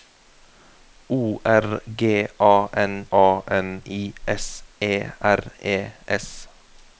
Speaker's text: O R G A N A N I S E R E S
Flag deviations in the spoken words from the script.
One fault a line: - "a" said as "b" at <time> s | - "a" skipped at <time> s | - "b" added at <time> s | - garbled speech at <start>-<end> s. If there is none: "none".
none